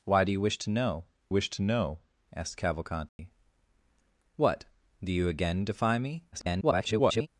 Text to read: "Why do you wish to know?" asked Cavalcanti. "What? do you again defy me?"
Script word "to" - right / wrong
right